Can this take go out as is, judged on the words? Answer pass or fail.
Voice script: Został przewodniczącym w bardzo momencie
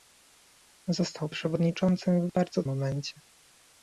pass